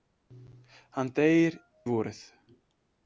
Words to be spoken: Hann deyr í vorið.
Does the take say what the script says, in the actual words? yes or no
yes